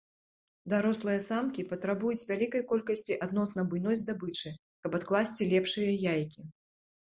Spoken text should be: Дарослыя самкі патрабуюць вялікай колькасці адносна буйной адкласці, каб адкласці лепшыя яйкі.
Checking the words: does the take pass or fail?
fail